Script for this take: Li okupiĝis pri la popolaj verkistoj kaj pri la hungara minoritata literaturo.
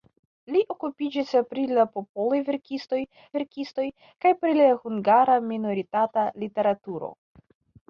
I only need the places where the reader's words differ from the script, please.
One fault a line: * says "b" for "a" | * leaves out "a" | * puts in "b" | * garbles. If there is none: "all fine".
* puts in "verkistoj"